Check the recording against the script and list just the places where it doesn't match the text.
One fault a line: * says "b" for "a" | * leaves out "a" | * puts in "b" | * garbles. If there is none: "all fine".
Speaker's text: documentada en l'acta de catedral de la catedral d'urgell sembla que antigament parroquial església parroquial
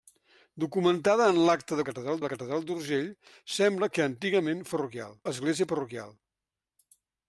all fine